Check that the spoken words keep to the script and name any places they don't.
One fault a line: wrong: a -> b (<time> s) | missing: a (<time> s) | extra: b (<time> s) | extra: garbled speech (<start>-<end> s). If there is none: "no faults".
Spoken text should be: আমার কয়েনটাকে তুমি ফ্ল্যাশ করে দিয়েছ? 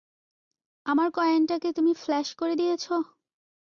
no faults